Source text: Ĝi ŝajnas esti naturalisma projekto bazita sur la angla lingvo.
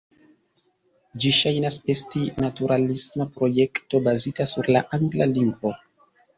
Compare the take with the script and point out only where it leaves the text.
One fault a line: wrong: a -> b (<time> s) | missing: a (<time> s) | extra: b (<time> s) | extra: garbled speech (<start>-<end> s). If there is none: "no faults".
no faults